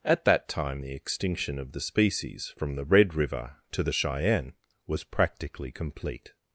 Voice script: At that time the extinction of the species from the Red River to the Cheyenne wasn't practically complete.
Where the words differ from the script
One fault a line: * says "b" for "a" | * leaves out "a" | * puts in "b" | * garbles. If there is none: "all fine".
* says "was" for "wasn't"